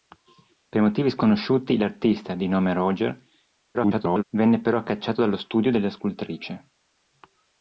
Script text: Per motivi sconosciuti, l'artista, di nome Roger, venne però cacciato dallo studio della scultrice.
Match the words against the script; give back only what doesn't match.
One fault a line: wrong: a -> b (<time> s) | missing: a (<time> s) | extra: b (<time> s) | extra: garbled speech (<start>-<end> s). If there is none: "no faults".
extra: garbled speech (3.7-4.2 s)